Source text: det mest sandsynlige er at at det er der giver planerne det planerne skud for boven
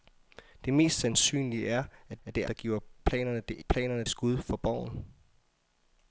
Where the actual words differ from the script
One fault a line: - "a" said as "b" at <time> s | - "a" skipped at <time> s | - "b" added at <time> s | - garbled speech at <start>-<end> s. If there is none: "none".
none